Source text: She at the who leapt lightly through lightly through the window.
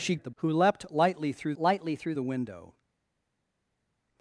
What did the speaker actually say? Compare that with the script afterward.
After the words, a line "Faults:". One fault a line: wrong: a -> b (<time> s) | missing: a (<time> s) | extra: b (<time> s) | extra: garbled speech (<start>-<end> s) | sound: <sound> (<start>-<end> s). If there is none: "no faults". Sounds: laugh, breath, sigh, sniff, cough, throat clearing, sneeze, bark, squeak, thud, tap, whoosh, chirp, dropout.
She at the who leapt lightly through lightly through the window.
Faults:
no faults